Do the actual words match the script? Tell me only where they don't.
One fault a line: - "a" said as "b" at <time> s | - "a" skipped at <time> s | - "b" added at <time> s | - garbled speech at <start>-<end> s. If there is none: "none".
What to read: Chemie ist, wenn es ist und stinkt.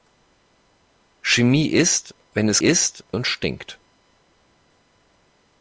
none